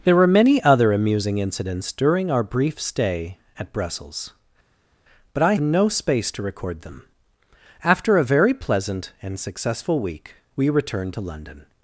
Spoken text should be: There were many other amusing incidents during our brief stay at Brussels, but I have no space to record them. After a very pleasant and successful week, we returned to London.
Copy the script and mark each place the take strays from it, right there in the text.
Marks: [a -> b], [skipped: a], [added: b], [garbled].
There were many other amusing incidents during our brief stay at Brussels, but I [skipped: have] no space to record them. After a very pleasant and successful week, we returned to London.